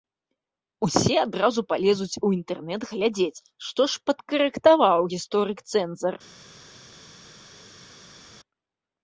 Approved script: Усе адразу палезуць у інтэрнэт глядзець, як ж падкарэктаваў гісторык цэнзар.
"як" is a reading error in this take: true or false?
true